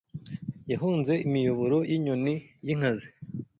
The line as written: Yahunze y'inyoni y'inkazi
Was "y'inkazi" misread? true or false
false